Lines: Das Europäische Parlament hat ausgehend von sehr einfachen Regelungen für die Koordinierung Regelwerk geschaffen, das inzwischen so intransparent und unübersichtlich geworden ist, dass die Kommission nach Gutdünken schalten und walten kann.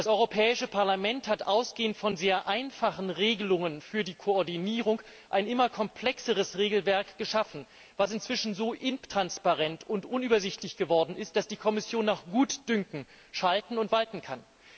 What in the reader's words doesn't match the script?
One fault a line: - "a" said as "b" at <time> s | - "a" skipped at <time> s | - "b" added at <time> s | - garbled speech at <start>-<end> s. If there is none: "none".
- "ein immer komplexeres" added at 5.3 s